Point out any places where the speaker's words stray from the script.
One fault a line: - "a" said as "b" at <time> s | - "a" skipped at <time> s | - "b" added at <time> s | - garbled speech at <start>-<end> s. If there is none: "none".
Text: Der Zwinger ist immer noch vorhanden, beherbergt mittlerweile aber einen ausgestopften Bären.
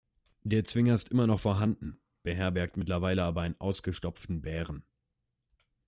none